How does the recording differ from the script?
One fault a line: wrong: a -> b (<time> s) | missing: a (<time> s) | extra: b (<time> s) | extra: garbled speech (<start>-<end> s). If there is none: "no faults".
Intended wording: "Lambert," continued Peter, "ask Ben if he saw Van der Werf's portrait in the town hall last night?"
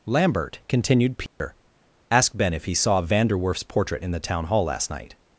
no faults